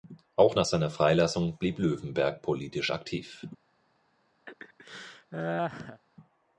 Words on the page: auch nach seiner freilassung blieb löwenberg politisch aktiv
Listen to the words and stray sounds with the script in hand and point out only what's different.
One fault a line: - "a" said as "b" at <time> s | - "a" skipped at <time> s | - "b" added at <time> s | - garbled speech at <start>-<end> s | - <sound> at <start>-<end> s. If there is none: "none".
- laugh at 4.5-6.0 s